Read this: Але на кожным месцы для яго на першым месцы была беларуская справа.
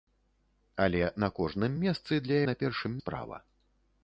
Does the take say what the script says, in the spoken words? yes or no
no